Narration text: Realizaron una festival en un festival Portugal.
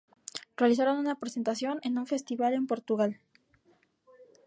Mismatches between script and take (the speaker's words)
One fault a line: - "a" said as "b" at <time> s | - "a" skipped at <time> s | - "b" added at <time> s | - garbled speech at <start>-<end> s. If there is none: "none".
- "festival" said as "presentación" at 1.2 s
- "en" added at 2.5 s